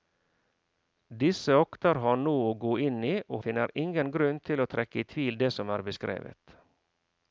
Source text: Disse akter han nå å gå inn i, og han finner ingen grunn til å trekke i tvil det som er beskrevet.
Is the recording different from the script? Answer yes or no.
yes